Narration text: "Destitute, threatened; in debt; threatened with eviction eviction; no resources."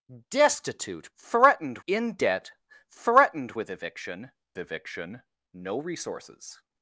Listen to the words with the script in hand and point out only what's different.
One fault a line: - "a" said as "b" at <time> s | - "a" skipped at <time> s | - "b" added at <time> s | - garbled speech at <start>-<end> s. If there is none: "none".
none